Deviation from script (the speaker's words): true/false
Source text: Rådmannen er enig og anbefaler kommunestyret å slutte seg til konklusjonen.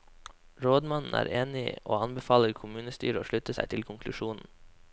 false